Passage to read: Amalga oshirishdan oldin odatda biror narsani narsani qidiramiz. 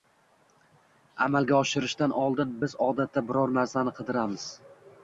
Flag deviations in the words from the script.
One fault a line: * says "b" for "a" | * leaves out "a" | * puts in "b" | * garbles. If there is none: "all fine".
* puts in "biz"
* leaves out "narsani"